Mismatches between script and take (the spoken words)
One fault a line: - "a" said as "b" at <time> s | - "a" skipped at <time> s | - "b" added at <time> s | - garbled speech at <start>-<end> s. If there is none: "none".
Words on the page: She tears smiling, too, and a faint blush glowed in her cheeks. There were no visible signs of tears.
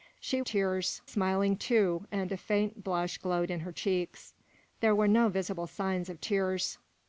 none